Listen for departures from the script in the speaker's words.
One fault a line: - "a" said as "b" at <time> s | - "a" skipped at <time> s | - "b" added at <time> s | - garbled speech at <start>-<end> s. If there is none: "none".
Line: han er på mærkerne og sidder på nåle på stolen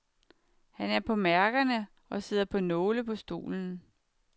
none